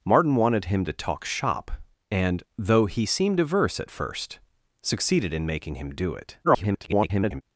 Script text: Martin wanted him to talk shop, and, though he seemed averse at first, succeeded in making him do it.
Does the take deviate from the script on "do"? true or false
false